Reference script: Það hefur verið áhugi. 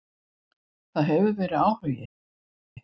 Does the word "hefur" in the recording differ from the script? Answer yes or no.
no